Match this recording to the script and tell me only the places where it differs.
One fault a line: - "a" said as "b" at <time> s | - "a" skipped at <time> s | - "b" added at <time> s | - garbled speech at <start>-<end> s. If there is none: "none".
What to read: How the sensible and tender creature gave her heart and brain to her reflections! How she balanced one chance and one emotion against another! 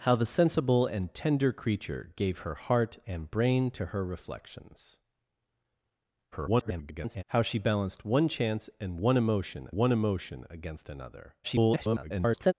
- garbled speech at 6.3-7.2 s
- "one emotion" added at 9.7 s
- garbled speech at 11.4-12.5 s